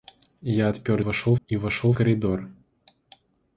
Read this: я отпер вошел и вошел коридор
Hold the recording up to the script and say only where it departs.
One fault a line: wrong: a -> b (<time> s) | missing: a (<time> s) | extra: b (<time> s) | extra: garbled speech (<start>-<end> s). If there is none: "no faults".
no faults